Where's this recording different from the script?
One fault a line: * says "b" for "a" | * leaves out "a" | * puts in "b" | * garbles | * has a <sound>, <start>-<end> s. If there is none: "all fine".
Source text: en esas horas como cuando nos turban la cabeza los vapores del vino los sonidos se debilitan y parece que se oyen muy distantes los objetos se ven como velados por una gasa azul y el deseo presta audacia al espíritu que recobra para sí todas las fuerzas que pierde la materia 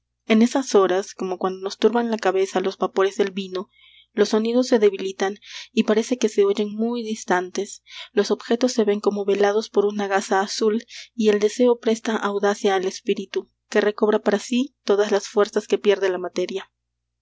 all fine